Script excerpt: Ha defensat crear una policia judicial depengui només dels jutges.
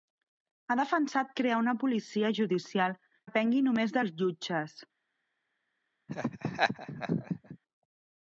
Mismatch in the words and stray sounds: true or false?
true